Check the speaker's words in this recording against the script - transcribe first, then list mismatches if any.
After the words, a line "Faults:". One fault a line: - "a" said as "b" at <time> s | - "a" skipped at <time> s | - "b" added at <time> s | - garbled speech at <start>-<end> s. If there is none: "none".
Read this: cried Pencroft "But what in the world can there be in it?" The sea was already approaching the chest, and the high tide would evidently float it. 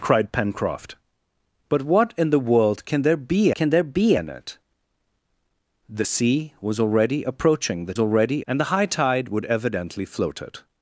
cried Pencroft "But what in the world can there be can there be in it?" The sea was already approaching the already, and the high tide would evidently float it.
Faults:
- "can there be" added at 3.5 s
- "chest" said as "already" at 8.0 s